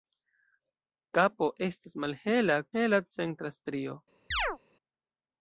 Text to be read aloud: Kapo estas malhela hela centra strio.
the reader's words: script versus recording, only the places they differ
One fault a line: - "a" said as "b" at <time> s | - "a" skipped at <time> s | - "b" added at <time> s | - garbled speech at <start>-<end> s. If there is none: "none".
none